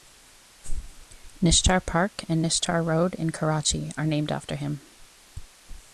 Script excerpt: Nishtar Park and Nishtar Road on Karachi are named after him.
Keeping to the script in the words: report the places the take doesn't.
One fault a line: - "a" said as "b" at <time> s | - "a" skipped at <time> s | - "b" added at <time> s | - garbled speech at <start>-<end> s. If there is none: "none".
- "on" said as "in" at 3.1 s